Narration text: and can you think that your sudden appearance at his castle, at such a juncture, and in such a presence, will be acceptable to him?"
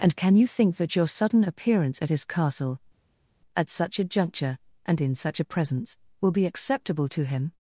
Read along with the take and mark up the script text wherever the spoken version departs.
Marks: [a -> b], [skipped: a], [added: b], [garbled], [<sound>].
and can you think that your sudden appearance at his castle, at such a juncture, and in such a presence, will be acceptable to him?"